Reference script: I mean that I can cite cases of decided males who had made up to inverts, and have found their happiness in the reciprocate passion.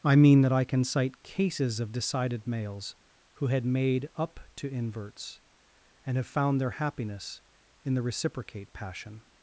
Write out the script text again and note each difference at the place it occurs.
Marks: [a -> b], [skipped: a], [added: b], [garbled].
I mean that I can cite cases of decided males who had made up to inverts, and have found their happiness in the reciprocate passion.